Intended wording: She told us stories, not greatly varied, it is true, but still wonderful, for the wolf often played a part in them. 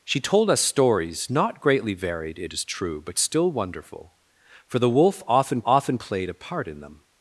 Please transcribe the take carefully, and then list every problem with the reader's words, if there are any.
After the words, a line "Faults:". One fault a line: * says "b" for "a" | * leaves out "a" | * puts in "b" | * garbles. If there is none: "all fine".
She told us stories, not greatly varied, it is true, but still wonderful, for the wolf often often played a part in them.
Faults:
* puts in "often"